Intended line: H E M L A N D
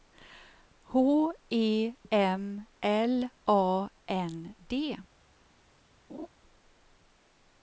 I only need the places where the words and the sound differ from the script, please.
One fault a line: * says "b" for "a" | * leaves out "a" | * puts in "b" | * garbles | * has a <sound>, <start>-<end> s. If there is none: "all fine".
* has a laugh, 6.1-6.3 s